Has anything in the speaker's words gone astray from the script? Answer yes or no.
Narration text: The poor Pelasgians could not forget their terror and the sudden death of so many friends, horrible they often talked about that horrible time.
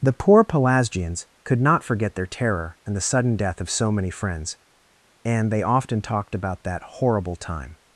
yes